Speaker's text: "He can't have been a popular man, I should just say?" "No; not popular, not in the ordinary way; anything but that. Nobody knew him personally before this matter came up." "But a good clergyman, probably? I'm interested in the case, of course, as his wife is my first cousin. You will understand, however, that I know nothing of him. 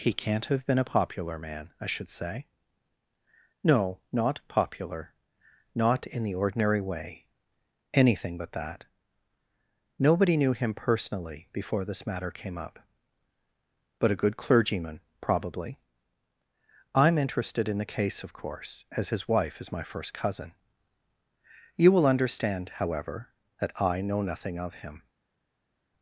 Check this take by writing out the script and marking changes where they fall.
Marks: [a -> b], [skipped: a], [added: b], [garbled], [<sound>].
"He can't have been a popular man, I should [skipped: just] say?" "No; not popular, not in the ordinary way; anything but that. Nobody knew him personally before this matter came up." "But a good clergyman, probably? I'm interested in the case, of course, as his wife is my first cousin. You will understand, however, that I know nothing of him.